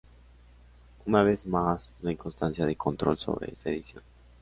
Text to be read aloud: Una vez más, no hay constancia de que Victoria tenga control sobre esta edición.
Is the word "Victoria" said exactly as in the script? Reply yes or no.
no